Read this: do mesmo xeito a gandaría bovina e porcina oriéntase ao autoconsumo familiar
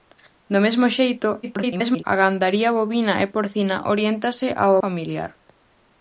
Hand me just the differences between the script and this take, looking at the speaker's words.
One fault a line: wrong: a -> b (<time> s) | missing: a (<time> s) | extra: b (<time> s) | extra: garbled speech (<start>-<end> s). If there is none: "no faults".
extra: garbled speech (1.4-2.0 s)
missing: autoconsumo (4.7 s)